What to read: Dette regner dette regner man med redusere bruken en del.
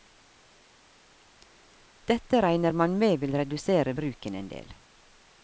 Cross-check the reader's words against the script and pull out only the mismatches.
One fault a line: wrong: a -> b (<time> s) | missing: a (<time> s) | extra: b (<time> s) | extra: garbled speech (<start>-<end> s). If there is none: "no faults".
missing: dette regner (2.7 s)
extra: vil (3.2 s)